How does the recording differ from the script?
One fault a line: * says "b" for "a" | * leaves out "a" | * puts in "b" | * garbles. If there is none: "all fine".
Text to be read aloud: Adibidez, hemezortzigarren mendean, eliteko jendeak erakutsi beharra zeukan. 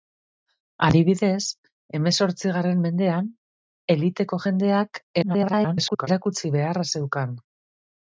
* garbles